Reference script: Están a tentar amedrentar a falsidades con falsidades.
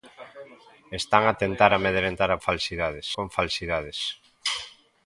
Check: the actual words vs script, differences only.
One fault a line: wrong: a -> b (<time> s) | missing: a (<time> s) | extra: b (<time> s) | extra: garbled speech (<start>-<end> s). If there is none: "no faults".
no faults